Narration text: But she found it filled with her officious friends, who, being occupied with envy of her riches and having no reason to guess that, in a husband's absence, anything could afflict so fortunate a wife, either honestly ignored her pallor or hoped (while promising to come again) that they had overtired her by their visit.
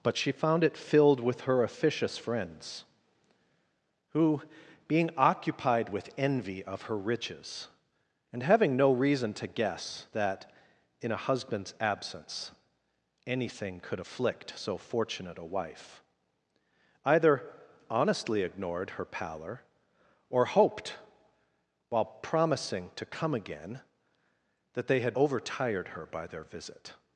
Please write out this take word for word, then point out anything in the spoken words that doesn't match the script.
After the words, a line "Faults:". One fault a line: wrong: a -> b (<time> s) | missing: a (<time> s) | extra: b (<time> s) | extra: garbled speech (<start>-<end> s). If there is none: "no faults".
But she found it filled with her officious friends, who, being occupied with envy of her riches and having no reason to guess that, in a husband's absence, anything could afflict so fortunate a wife, either honestly ignored her pallor or hoped (while promising to come again) that they had overtired her by their visit.
Faults:
no faults